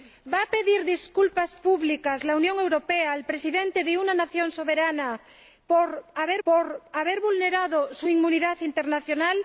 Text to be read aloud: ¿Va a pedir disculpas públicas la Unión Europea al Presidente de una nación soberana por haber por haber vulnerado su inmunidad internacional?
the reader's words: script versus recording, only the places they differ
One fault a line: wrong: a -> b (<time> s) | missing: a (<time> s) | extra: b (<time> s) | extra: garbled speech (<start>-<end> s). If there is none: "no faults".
no faults